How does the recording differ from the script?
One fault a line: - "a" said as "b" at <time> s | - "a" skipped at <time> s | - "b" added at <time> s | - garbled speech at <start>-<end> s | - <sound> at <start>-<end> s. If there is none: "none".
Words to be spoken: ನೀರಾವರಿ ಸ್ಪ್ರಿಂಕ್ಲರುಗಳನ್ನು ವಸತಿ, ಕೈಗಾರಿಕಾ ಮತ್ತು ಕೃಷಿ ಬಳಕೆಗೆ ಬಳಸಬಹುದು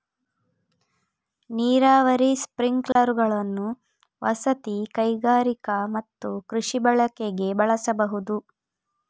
- dropout at 2.9-3.0 s